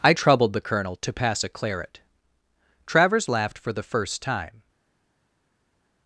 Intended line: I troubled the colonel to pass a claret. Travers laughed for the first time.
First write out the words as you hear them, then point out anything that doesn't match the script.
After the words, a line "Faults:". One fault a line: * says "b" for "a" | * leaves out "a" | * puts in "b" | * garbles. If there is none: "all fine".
I troubled the colonel to pass a claret. Travers laughed for the first time.
Faults:
all fine